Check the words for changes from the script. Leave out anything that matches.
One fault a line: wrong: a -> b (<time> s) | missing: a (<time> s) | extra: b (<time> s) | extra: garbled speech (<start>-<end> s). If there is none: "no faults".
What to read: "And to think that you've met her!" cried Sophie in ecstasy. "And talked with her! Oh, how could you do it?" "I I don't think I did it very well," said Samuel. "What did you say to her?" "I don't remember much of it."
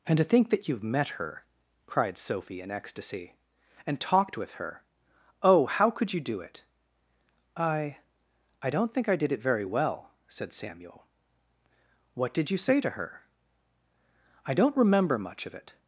no faults